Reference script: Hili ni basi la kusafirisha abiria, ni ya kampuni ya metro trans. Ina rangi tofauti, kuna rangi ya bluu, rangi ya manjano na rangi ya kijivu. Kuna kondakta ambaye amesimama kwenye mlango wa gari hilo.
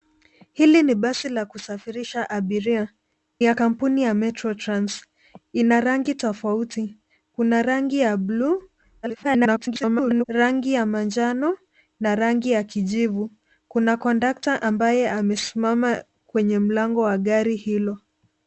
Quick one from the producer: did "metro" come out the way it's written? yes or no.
yes